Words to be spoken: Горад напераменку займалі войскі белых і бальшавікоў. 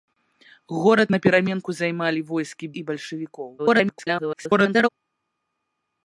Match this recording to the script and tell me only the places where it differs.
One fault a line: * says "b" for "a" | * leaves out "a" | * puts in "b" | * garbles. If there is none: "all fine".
* leaves out "белых"
* garbles